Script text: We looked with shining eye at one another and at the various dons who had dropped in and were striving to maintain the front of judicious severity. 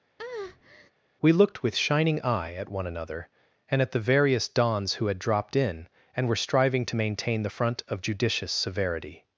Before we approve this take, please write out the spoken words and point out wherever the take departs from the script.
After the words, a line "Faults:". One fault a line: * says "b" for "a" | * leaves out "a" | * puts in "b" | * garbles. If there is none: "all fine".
We looked with shining eye at one another and at the various dons who had dropped in and were striving to maintain the front of judicious severity.
Faults:
all fine